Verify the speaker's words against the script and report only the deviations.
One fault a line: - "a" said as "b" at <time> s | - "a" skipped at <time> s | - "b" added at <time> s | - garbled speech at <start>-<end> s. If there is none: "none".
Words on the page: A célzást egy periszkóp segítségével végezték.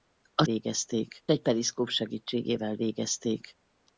- "célzást" said as "végezték" at 0.4 s